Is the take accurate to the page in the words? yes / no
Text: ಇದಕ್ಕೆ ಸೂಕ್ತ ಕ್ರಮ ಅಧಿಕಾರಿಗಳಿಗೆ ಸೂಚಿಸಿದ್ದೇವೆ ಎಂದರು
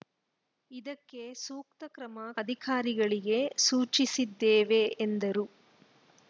yes